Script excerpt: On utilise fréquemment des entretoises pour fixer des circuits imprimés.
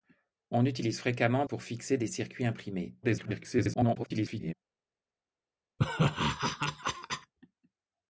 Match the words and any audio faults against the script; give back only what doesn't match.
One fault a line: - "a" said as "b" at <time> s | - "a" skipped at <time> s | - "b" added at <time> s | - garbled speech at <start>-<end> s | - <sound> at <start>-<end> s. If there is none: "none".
- "des entretoises" skipped at 1.4 s
- garbled speech at 3.0-4.5 s
- laugh at 5.8-7.3 s